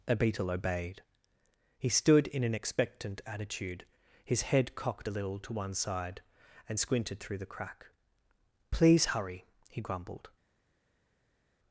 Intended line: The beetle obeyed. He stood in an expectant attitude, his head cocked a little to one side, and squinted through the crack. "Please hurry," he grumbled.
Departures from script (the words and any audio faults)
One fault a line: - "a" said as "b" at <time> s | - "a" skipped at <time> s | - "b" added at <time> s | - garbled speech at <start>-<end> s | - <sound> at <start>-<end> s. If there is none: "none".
- "The" said as "A" at 0.1 s